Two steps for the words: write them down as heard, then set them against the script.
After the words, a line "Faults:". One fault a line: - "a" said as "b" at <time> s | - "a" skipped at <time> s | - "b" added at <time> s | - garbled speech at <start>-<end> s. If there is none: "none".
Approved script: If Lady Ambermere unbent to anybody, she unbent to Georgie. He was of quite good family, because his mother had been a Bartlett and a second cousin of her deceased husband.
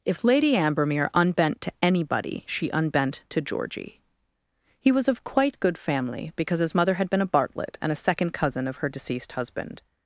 If Lady Ambermere unbent to anybody, she unbent to Georgie. He was of quite good family, because his mother had been a Bartlett and a second cousin of her deceased husband.
Faults:
none